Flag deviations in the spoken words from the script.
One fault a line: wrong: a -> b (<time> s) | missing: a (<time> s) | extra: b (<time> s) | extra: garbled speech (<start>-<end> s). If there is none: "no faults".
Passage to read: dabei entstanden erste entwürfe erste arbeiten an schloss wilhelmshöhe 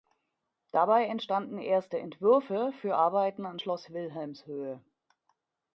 wrong: erste -> für (2.8 s)